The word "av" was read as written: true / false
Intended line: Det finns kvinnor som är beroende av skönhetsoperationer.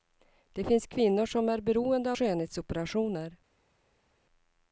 false